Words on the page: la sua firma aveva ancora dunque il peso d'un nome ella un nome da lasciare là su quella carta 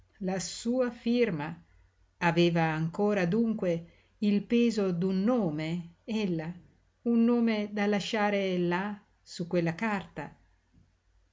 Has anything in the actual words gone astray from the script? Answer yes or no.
no